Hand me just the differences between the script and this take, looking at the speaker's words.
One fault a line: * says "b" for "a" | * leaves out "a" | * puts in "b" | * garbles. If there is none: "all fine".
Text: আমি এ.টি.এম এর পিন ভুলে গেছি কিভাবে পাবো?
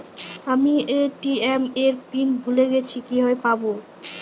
all fine